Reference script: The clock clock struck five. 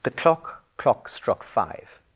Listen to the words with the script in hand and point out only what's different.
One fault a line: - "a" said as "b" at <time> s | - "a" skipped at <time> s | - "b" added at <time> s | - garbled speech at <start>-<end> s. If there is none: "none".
none